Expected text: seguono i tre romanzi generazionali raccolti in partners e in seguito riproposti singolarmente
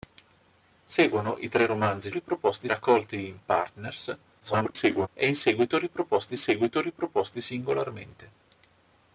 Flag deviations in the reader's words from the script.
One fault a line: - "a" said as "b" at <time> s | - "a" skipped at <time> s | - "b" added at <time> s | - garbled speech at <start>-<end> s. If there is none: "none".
- "generazionali" said as "riproposti" at 2.1 s
- garbled speech at 4.4-5.1 s
- "seguito riproposti" added at 6.4 s